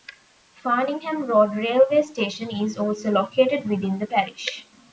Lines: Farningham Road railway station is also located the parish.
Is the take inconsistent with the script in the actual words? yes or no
yes